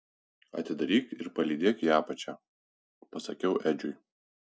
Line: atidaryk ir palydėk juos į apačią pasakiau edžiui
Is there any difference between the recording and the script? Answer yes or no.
yes